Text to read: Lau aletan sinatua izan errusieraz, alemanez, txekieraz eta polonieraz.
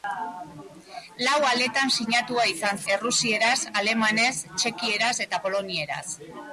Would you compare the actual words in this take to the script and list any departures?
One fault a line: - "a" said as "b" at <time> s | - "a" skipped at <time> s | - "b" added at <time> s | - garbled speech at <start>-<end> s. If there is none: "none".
none